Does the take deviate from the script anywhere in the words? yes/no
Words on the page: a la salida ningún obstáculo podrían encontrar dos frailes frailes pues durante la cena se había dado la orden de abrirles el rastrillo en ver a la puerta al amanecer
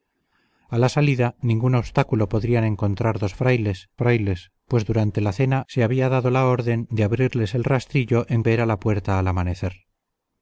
no